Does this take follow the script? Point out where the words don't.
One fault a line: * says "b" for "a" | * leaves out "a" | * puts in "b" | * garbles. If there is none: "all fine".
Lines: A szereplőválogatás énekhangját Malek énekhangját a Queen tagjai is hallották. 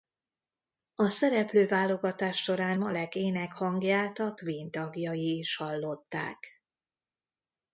* says "során" for "énekhangját"